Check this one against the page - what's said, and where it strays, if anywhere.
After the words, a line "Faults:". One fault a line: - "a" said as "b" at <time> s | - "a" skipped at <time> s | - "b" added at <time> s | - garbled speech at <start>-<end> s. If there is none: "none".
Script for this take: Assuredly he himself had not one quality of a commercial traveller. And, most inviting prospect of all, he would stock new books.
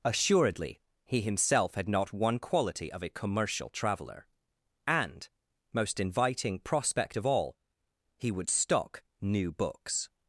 Assuredly he himself had not one quality of a commercial traveller. And, most inviting prospect of all, he would stock new books.
Faults:
none